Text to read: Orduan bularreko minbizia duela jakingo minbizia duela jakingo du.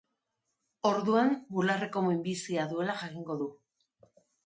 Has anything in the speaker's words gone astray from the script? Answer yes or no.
yes